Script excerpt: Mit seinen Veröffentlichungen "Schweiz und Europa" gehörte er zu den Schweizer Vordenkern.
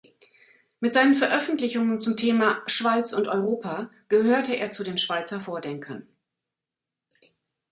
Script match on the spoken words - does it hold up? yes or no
no